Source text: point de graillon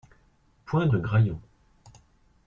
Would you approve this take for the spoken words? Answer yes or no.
yes